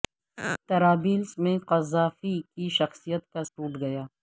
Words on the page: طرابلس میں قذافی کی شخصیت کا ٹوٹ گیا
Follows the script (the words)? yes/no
yes